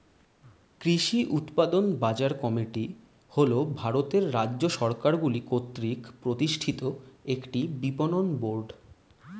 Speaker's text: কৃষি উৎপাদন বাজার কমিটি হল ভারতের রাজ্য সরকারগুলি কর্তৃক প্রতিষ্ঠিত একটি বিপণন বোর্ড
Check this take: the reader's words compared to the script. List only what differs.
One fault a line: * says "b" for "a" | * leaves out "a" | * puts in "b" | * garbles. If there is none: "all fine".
all fine